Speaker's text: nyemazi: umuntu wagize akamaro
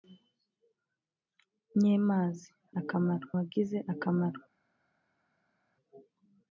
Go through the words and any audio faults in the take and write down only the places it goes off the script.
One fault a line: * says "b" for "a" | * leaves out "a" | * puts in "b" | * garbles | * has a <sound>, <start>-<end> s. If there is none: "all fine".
* says "akamaro" for "umuntu"